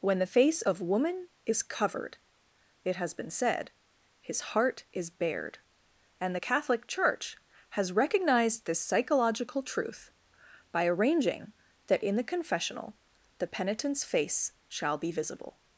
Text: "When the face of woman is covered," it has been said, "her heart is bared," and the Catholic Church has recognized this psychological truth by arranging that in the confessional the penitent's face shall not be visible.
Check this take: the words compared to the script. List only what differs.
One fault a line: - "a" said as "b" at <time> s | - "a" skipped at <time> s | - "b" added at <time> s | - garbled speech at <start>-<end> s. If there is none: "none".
- "her" said as "his" at 4.2 s
- "not" skipped at 15.0 s